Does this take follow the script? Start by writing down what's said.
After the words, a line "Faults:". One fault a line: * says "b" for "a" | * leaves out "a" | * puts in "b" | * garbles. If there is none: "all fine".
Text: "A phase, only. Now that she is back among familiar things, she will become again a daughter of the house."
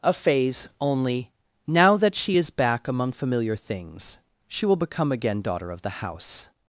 "A phase, only. Now that she is back among familiar things, she will become again daughter of the house."
Faults:
* leaves out "a"